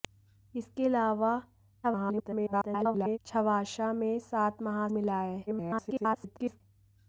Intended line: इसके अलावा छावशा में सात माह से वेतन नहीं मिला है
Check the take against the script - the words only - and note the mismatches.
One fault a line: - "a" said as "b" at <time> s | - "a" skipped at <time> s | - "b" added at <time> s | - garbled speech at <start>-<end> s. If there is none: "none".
- garbled speech at 1.8-3.2 s
- "से वेतन नहीं" skipped at 4.9 s
- garbled speech at 5.5-6.6 s